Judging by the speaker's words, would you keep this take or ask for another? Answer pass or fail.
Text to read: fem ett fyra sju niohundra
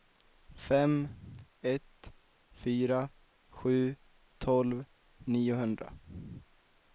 fail